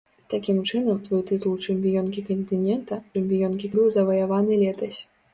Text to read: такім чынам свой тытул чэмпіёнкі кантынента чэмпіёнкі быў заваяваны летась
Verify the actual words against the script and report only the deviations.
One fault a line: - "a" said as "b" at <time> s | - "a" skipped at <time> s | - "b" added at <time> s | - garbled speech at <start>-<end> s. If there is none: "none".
none